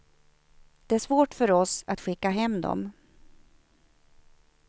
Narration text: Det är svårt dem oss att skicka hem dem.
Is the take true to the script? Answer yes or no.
no